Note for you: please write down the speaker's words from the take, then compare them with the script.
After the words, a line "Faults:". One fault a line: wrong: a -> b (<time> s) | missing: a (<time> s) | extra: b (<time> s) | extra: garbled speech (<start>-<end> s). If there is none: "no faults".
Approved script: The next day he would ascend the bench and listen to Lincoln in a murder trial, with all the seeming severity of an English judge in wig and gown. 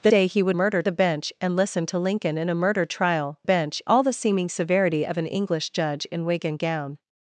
The day he would murder the bench and listen to Lincoln in a murder trial, bench all the seeming severity of an English judge in wig and gown.
Faults:
missing: next (0.1 s)
wrong: ascend -> murder (0.5 s)
wrong: with -> bench (3.4 s)